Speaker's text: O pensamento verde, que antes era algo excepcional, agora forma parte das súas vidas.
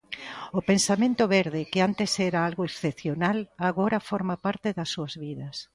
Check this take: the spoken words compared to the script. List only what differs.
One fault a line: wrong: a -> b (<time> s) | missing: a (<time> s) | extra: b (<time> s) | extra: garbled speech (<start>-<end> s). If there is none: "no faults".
no faults